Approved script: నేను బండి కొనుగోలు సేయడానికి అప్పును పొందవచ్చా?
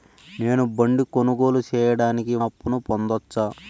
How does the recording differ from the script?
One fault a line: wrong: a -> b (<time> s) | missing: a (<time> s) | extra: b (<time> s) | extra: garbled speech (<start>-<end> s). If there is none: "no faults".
no faults